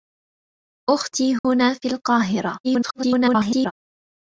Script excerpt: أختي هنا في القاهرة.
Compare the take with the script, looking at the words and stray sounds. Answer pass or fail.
fail